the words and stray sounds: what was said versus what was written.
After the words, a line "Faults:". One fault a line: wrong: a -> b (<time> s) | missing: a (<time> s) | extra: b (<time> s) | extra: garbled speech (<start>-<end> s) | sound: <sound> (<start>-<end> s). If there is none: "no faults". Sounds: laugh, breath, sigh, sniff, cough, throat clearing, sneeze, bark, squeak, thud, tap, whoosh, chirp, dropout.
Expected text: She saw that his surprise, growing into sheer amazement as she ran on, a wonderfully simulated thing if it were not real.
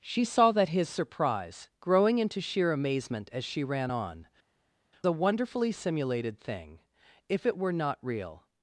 She saw that his surprise, growing into sheer amazement as she ran on, a wonderfully simulated thing if it were not real.
Faults:
no faults